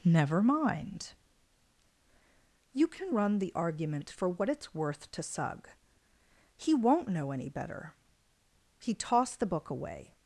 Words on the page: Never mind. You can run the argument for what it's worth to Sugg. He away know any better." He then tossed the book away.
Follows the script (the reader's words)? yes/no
no